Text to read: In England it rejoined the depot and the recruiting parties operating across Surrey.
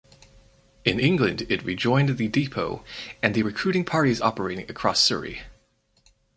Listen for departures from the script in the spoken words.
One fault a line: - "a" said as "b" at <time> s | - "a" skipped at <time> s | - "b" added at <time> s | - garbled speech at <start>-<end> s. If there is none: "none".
none